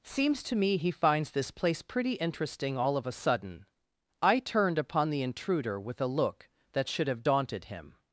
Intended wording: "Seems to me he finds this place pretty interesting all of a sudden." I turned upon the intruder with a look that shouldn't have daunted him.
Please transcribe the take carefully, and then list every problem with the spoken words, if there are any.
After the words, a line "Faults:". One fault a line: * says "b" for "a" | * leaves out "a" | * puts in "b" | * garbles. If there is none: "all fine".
"Seems to me he finds this place pretty interesting all of a sudden." I turned upon the intruder with a look that should have daunted him.
Faults:
* says "should" for "shouldn't"